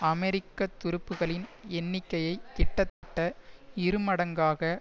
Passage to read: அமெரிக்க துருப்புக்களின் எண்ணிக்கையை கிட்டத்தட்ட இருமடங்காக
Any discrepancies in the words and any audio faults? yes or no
yes